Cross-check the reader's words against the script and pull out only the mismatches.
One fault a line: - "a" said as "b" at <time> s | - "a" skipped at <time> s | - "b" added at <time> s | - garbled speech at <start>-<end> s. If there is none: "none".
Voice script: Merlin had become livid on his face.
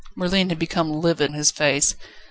none